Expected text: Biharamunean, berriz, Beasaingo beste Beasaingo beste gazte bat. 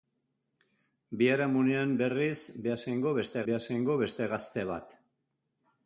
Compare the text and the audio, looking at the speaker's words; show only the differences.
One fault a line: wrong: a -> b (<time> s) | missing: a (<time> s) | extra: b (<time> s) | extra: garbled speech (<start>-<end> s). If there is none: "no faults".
no faults